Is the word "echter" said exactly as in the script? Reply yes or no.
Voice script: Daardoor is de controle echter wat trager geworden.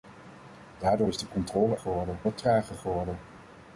no